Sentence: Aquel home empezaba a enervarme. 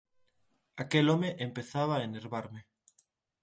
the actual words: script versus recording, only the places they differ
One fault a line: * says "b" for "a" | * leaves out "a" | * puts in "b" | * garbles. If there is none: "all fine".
all fine